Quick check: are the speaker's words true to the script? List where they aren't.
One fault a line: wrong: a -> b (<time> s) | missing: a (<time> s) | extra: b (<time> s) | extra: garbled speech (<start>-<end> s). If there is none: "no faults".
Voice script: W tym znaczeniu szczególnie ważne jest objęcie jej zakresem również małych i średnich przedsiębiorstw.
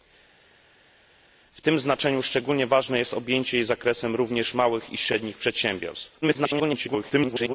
extra: garbled speech (6.2-7.5 s)